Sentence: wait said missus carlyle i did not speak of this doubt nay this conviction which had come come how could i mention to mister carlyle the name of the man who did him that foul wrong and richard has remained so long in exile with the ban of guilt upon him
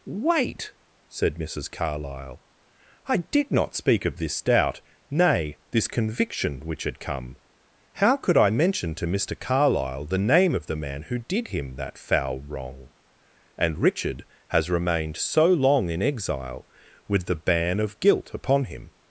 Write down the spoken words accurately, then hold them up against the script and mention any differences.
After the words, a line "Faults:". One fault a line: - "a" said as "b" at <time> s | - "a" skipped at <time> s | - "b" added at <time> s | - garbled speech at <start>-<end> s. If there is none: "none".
wait said missus carlyle i did not speak of this doubt nay this conviction which had come how could i mention to mister carlyle the name of the man who did him that foul wrong and richard has remained so long in exile with the ban of guilt upon him
Faults:
- "come" skipped at 7.4 s